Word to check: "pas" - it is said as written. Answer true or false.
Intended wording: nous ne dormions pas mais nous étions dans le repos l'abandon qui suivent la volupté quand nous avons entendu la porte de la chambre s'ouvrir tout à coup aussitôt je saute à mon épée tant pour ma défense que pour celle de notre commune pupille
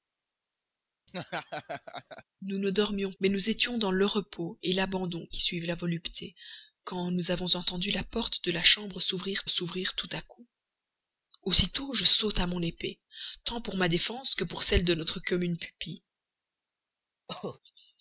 false